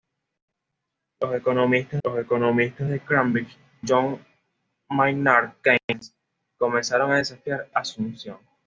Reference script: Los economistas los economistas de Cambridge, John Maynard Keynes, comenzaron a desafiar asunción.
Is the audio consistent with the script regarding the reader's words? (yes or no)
yes